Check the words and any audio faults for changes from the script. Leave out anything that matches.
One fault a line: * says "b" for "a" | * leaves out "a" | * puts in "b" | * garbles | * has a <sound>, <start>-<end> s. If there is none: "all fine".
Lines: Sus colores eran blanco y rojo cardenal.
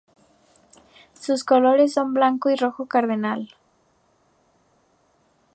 * says "son" for "eran"